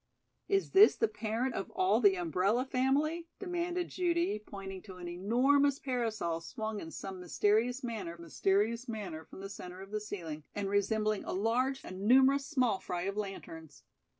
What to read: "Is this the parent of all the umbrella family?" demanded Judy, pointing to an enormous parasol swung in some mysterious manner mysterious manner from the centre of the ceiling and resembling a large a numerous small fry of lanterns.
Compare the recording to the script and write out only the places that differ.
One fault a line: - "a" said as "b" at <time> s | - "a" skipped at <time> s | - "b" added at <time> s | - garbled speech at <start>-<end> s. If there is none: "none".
none